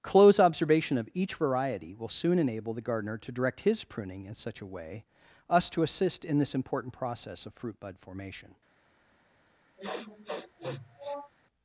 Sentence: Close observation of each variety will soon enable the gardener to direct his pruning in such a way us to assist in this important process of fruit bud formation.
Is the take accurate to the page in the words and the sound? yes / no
no